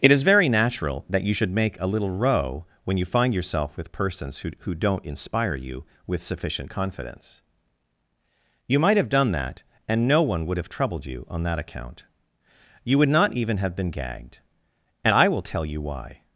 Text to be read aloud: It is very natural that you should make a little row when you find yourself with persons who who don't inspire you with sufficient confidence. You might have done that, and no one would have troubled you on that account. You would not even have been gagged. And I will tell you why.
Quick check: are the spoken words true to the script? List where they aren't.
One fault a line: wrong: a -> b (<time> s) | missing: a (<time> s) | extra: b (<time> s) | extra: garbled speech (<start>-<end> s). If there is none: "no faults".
no faults